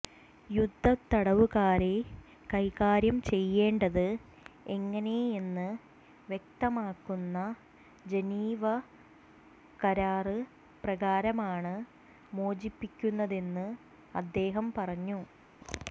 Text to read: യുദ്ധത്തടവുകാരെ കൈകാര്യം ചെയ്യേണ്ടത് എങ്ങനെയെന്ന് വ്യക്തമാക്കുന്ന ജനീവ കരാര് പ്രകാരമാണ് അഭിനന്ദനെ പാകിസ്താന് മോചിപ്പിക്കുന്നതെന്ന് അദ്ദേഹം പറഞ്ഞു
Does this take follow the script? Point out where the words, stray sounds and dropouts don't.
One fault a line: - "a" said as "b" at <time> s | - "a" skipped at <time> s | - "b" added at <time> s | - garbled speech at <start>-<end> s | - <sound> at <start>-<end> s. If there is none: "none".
- "അഭിനന്ദനെ പാകിസ്താന്" skipped at 11.7 s